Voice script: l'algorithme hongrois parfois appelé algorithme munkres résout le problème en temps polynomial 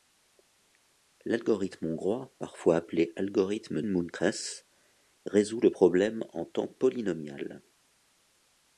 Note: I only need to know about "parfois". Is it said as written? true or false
true